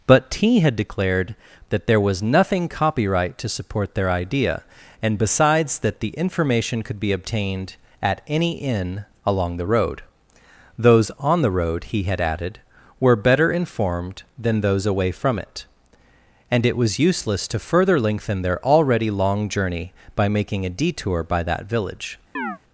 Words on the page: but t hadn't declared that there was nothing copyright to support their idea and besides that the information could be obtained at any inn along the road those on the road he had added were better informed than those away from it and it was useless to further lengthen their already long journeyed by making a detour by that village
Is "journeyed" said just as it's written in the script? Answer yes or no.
no